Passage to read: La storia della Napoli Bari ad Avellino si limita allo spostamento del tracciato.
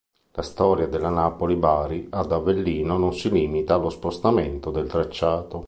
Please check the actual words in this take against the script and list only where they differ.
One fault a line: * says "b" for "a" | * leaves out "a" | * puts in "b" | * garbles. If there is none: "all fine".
* puts in "non"